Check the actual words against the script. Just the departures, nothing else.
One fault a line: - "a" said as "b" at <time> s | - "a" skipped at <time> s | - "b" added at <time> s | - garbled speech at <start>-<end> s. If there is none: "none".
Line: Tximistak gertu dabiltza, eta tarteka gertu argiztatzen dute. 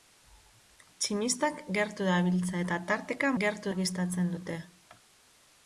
none